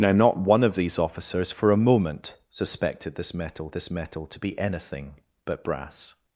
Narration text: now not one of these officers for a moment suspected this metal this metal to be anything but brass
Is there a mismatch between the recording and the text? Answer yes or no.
no